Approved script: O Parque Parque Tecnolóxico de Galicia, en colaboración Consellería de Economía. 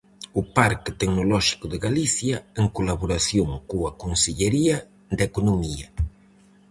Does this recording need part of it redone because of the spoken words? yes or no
yes